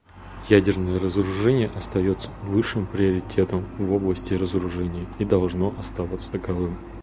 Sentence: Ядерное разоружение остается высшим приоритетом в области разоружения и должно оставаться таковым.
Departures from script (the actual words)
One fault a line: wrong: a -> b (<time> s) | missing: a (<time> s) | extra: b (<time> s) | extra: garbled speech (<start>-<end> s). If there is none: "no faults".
no faults